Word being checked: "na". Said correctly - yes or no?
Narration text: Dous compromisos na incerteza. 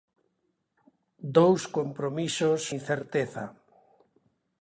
no